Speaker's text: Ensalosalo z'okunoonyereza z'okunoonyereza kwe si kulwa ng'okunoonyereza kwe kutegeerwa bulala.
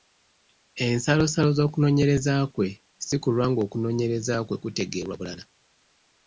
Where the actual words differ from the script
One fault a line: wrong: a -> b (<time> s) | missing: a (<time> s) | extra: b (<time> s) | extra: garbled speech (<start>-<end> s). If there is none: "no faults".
missing: z'okunoonyereza (2.3 s)